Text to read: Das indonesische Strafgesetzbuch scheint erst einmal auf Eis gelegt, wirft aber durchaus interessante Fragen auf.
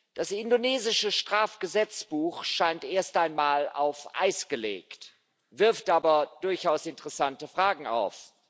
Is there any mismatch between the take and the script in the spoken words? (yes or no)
no